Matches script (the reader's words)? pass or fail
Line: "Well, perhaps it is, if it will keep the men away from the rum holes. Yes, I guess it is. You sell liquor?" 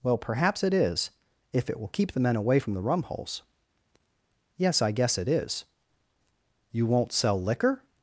fail